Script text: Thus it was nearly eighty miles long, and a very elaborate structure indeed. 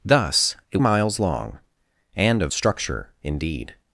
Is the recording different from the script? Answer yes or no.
yes